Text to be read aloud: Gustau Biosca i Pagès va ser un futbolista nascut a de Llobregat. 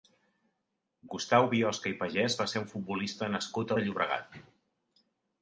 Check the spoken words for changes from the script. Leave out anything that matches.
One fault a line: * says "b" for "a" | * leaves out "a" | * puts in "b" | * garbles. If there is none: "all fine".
all fine